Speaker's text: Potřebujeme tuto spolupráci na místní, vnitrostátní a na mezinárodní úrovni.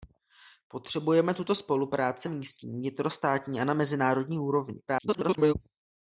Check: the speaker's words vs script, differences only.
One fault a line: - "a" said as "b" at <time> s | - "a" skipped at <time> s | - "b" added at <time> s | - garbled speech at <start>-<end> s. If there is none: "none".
- "na" skipped at 2.3 s
- garbled speech at 4.9-5.5 s